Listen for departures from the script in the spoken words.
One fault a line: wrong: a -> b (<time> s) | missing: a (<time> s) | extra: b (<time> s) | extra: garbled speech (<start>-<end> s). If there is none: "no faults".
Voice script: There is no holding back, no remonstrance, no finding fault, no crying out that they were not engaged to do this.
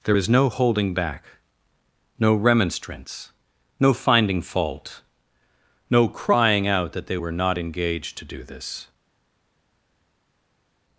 no faults